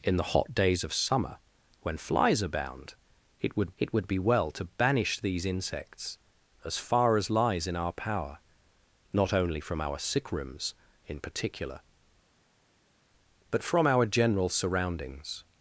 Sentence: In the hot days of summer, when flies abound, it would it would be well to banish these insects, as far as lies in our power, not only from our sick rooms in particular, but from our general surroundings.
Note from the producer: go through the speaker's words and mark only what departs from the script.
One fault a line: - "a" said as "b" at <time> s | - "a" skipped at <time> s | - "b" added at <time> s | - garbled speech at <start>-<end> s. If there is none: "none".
none